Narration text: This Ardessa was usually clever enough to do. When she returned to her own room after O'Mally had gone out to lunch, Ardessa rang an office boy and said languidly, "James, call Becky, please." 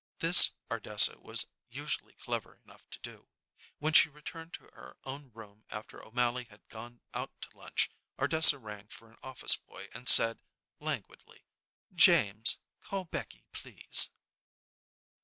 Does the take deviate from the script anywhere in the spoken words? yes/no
yes